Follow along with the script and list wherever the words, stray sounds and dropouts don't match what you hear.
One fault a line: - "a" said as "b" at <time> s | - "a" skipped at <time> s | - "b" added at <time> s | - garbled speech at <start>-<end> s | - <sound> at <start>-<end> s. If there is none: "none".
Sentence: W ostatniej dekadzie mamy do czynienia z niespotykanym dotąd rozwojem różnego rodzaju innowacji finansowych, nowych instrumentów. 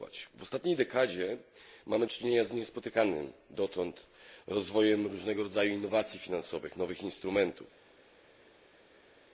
- "do" skipped at 2.1 s